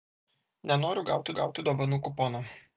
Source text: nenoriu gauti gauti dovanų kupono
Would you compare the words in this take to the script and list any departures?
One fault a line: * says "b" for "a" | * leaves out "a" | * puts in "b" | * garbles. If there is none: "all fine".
all fine